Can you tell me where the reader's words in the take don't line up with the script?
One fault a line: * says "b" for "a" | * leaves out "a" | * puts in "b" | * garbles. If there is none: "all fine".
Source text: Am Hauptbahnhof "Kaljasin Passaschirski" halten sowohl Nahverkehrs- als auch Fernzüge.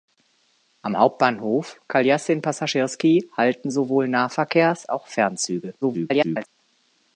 * leaves out "als"
* garbles